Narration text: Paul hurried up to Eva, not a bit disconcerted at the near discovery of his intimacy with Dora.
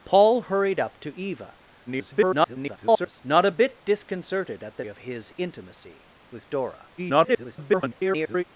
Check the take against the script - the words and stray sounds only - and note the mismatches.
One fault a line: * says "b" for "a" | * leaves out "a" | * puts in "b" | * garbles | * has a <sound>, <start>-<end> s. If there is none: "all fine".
* garbles
* leaves out "near discovery"
* garbles